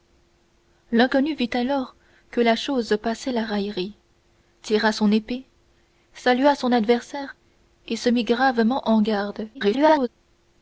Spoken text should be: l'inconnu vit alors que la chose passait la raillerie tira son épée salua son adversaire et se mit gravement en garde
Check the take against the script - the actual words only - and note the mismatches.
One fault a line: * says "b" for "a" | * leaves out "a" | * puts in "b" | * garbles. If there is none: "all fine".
* garbles